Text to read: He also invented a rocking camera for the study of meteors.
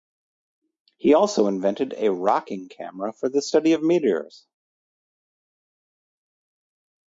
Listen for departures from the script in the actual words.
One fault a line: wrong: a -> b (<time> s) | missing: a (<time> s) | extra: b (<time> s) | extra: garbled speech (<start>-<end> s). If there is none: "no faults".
no faults